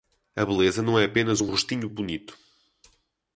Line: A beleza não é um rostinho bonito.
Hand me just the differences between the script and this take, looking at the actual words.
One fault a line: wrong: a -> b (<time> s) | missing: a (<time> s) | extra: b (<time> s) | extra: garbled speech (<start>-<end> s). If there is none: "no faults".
extra: apenas (1.1 s)